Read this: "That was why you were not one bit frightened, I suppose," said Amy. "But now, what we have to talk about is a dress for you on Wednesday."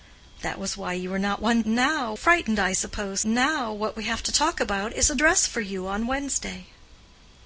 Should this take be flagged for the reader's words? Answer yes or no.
yes